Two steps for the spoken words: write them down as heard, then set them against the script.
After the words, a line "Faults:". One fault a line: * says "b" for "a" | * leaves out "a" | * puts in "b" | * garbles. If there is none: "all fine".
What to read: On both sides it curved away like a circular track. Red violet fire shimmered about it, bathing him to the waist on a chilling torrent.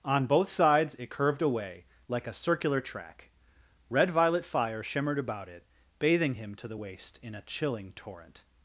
On both sides it curved away like a circular track. Red violet fire shimmered about it, bathing him to the waist in a chilling torrent.
Faults:
* says "in" for "on"